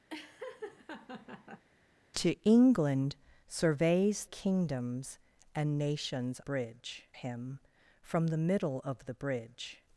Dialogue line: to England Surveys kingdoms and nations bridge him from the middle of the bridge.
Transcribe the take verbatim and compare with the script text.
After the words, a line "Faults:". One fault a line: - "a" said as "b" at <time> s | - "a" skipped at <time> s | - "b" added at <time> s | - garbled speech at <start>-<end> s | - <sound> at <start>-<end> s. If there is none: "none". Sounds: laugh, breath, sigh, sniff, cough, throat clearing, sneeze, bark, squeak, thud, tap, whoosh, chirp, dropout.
to England Surveys kingdoms and nations bridge him from the middle of the bridge.
Faults:
- laugh at 0.1-1.6 s